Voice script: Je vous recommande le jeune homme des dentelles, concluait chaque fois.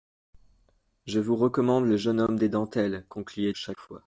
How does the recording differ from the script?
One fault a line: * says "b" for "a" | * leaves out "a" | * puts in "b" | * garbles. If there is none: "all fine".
all fine